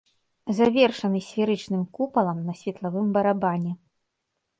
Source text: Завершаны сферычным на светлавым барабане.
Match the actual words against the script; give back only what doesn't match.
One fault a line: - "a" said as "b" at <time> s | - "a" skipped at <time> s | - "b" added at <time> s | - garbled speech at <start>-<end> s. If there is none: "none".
- "купалам" added at 2.0 s